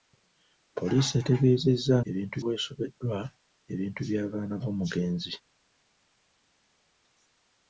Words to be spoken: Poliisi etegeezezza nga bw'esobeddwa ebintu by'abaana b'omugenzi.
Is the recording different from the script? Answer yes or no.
yes